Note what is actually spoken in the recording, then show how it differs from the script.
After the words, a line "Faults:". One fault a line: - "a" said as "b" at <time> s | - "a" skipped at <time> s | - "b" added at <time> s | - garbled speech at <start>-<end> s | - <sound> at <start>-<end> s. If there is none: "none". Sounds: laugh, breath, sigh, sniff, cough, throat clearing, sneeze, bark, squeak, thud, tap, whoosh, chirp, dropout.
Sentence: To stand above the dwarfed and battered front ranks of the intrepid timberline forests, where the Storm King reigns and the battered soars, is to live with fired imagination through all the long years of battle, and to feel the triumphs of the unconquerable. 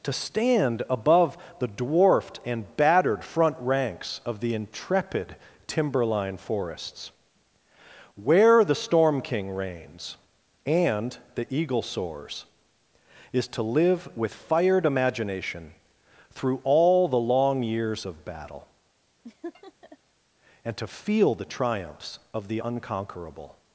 To stand above the dwarfed and battered front ranks of the intrepid timberline forests, where the Storm King reigns and the eagle soars, is to live with fired imagination through all the long years of battle, and to feel the triumphs of the unconquerable.
Faults:
- "battered" said as "eagle" at 11.5 s
- laugh at 19.2-20.0 s